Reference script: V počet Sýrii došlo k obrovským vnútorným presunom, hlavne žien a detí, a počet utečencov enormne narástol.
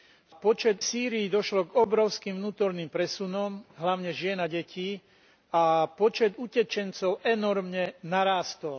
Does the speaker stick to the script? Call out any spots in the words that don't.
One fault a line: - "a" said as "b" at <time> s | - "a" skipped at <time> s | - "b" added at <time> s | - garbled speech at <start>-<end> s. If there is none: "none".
none